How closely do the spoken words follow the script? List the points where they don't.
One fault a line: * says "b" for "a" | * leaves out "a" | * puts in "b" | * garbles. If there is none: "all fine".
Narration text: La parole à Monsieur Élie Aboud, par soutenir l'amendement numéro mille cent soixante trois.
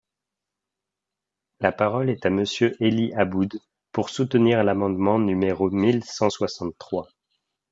* puts in "est"
* says "pour" for "par"